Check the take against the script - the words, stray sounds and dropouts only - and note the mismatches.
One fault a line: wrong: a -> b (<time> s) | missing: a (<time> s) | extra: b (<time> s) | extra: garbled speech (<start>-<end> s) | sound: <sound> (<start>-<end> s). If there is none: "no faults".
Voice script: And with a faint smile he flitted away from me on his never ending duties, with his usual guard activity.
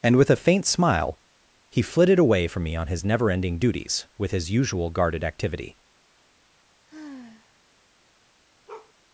wrong: guard -> guarded (4.9 s)
sound: sigh (6.9-7.6 s)
sound: bark (8.7-8.9 s)